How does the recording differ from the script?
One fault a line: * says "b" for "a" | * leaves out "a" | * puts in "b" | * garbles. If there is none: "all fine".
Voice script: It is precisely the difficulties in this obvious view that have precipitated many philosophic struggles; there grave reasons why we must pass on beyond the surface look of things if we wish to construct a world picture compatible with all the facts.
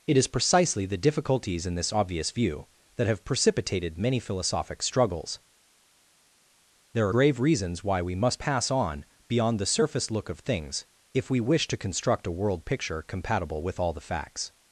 all fine